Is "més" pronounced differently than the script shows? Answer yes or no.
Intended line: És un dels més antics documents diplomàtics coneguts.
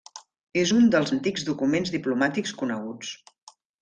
yes